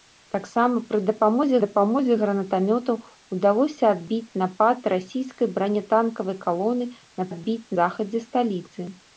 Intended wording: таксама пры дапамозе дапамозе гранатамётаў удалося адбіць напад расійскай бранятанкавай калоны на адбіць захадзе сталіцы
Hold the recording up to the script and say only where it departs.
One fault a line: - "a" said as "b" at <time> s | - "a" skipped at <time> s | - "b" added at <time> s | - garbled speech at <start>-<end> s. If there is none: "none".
none